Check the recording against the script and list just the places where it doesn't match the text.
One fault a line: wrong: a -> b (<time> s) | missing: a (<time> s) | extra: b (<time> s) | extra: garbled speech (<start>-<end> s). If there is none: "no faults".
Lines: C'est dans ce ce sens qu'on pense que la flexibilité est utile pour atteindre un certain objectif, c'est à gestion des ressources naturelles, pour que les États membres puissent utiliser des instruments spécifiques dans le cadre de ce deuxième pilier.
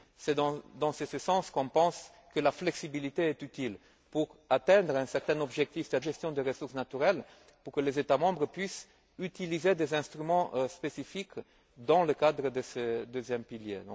no faults